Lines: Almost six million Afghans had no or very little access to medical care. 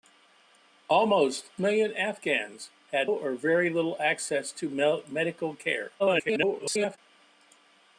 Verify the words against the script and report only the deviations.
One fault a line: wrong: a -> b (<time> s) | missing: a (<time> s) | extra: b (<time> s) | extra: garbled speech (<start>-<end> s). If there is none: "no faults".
missing: six (1.5 s)
missing: no (3.1 s)
extra: garbled speech (6.0-7.0 s)